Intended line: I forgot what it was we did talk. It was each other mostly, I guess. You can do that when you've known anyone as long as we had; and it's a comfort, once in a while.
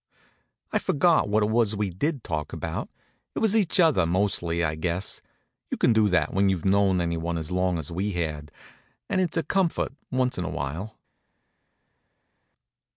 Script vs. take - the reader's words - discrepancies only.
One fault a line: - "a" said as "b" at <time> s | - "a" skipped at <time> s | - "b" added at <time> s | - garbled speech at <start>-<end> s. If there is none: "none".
- "about" added at 2.5 s